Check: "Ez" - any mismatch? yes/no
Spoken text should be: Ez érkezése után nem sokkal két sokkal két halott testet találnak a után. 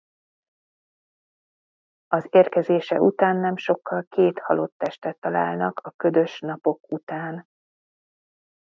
yes